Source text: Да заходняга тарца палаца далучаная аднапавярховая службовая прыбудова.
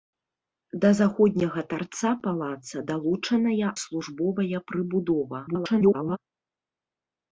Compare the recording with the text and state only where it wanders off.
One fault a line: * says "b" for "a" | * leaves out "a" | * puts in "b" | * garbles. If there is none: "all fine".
* leaves out "аднапавярховая"
* garbles